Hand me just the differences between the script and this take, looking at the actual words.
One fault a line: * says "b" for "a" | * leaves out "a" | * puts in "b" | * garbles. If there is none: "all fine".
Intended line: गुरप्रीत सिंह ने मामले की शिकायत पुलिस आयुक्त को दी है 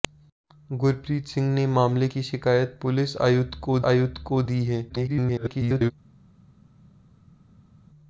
* puts in "आयुक्त को"
* garbles